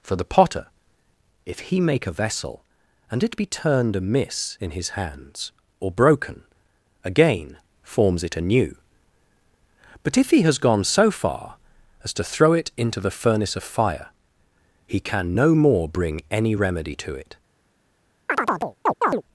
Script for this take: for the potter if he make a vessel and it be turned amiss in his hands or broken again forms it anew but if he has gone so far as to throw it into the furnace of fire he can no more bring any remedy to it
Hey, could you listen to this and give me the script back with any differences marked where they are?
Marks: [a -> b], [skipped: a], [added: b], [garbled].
for the potter if he make a vessel and it be turned amiss in his hands or broken again forms it anew but if he has gone so far as to throw it into the furnace of fire he can no more bring any remedy to it